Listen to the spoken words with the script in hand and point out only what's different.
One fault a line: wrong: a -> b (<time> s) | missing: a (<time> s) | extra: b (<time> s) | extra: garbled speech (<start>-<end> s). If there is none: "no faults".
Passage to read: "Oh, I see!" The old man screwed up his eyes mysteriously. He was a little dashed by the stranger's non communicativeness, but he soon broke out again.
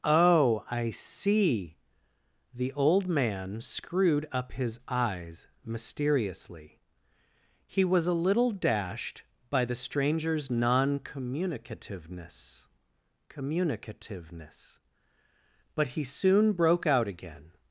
extra: communicativeness (13.3 s)